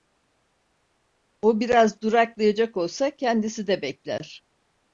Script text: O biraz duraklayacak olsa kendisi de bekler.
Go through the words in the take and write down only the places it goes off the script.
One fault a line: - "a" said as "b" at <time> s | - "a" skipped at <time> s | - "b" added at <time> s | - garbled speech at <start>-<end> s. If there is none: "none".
none